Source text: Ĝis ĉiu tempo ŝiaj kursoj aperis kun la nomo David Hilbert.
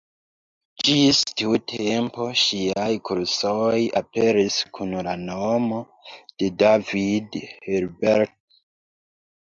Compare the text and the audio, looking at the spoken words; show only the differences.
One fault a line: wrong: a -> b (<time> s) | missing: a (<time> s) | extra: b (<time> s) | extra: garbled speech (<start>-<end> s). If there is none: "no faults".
wrong: ĉiu -> tiu (1.4 s)
extra: de (6.2 s)